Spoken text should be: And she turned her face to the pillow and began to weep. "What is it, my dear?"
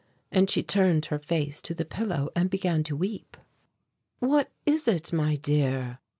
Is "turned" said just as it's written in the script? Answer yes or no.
yes